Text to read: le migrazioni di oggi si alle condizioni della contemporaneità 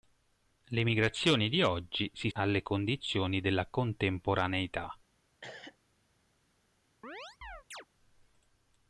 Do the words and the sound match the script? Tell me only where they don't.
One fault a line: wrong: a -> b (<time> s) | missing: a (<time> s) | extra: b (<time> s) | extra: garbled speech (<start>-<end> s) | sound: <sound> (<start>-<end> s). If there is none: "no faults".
sound: cough (5.4-5.8 s)
sound: chirp (7.0-7.9 s)